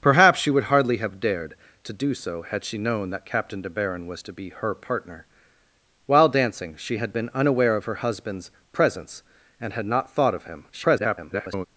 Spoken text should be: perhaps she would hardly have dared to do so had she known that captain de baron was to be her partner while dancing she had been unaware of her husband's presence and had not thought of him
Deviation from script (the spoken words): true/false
true